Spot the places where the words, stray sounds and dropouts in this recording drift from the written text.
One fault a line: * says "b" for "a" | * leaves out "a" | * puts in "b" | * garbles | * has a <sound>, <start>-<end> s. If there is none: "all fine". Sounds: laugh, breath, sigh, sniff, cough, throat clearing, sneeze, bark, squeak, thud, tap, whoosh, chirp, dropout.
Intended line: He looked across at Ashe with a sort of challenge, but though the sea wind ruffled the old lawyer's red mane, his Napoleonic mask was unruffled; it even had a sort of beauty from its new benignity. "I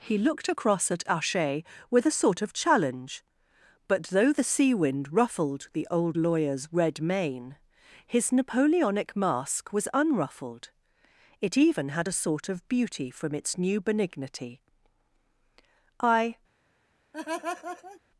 * has a laugh, 17.1-18.0 s